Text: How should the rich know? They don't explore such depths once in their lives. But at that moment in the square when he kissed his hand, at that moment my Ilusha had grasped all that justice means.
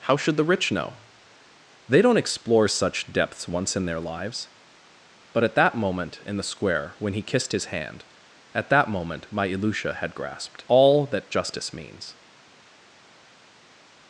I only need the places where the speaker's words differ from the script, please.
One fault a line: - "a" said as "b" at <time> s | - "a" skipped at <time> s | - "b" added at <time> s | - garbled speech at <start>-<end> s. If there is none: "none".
none